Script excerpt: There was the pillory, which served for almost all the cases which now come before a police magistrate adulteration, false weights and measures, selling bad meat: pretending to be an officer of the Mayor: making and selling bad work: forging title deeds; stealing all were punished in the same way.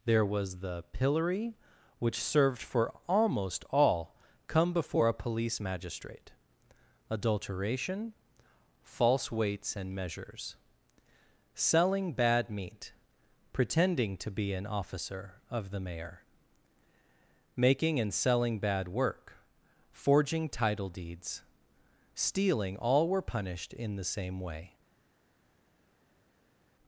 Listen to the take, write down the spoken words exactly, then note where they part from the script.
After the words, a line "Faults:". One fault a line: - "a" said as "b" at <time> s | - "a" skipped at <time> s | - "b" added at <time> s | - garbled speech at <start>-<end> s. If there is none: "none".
There was the pillory, which served for almost all come before a police magistrate adulteration, false weights and measures, selling bad meat: pretending to be an officer of the Mayor: making and selling bad work: forging title deeds; stealing all were punished in the same way.
Faults:
- "the cases which now" skipped at 4.2 s